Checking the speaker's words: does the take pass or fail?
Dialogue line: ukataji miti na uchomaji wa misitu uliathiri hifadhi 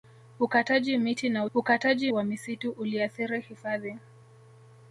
fail